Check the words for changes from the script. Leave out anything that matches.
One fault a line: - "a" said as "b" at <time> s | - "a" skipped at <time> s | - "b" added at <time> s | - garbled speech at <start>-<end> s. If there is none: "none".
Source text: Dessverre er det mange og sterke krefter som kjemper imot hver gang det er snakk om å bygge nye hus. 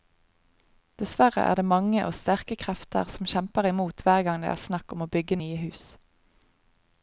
none